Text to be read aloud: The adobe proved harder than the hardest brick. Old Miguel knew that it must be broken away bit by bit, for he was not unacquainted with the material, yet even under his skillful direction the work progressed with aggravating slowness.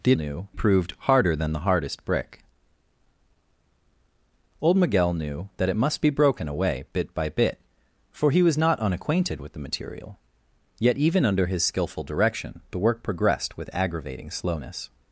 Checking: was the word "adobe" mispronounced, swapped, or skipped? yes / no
yes